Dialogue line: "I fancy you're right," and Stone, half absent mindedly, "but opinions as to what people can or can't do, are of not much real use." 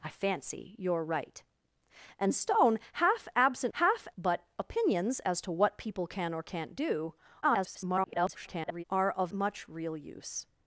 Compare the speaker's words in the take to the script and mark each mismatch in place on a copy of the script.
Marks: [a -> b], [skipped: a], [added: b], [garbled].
"I fancy you're right," and Stone, half absent [mindedly, -> half] "but opinions as to what people can or can't do, [garbled] are of [skipped: not] much real use."